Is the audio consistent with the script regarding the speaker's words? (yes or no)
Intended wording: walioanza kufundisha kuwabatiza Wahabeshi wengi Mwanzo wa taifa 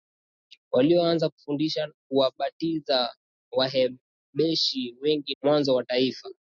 yes